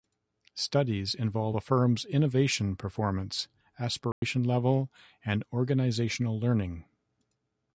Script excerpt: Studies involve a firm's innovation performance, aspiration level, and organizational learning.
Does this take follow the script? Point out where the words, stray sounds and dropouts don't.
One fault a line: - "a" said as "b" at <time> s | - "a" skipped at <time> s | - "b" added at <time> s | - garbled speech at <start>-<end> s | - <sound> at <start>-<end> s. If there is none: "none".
- dropout at 4.1-4.2 s